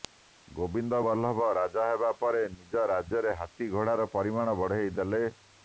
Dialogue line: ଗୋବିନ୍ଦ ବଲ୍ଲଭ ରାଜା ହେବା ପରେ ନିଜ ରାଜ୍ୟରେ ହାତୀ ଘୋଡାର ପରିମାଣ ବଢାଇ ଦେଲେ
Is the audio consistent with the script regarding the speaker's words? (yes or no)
yes